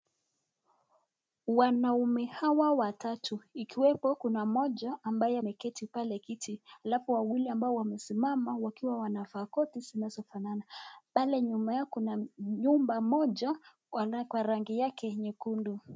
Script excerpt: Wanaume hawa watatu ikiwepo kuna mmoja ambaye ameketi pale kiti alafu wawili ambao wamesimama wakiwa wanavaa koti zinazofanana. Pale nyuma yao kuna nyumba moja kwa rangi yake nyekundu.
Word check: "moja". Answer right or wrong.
right